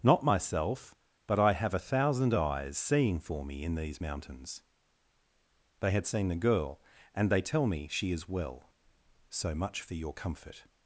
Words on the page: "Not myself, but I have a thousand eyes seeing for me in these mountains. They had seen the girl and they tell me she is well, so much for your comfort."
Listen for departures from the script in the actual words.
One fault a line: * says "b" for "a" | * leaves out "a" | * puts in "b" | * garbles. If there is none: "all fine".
all fine